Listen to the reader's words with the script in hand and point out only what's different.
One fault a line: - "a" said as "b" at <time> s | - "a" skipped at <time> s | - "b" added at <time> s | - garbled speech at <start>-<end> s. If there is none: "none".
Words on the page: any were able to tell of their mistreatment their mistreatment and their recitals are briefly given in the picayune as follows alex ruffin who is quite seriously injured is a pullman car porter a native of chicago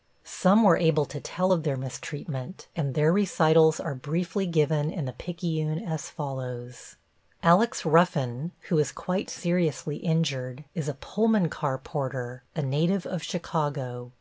- "any" said as "some" at 0.2 s
- "their mistreatment" skipped at 2.7 s